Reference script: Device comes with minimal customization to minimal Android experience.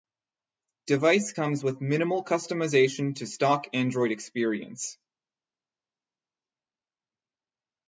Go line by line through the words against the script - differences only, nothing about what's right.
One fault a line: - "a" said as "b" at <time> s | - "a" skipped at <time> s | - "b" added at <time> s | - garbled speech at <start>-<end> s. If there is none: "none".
- "minimal" said as "stock" at 3.3 s